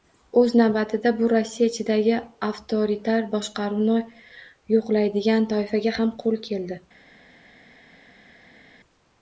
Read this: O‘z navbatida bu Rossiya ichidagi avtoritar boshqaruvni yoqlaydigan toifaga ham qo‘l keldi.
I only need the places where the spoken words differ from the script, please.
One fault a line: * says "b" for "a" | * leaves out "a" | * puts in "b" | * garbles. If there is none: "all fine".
all fine